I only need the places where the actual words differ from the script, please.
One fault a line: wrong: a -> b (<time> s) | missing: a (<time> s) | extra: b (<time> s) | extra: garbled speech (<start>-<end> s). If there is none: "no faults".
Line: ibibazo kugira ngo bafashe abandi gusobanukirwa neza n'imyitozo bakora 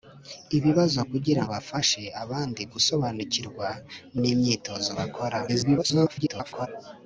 missing: ngo (1.4 s)
missing: neza (3.7 s)
extra: garbled speech (5.5-6.7 s)